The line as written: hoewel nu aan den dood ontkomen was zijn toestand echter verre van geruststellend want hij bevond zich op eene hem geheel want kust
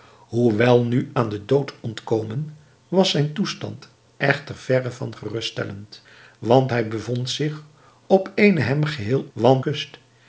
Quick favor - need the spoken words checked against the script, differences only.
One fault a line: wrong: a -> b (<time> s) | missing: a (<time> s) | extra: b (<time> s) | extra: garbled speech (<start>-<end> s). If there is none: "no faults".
no faults